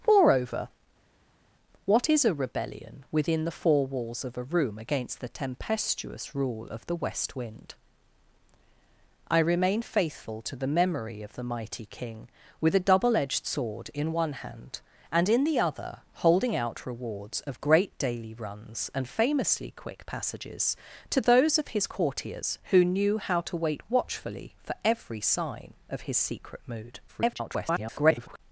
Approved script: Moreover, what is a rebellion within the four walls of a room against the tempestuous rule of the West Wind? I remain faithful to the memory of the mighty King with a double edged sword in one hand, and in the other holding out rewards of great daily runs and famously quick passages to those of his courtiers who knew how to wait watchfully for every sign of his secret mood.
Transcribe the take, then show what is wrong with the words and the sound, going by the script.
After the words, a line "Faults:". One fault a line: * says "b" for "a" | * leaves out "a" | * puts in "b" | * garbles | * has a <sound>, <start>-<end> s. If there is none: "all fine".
Moreover, what is a rebellion within the four walls of a room against the tempestuous rule of the West Wind? I remain faithful to the memory of the mighty King with a double edged sword in one hand, and in the other holding out rewards of great daily runs and famously quick passages to those of his courtiers who knew how to wait watchfully for every sign of his secret mood. [garbled]
Faults:
* garbles